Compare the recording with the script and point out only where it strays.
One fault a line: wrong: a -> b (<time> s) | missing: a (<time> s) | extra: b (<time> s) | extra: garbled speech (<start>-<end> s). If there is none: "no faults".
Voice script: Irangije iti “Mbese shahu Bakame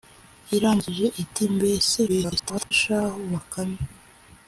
extra: garbled speech (2.1-2.7 s)